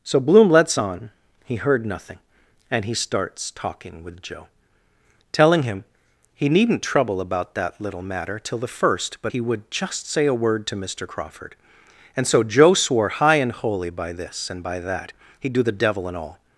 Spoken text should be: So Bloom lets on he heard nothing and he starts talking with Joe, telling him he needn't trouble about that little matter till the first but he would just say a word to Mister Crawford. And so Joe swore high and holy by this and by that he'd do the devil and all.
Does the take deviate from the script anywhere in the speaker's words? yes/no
no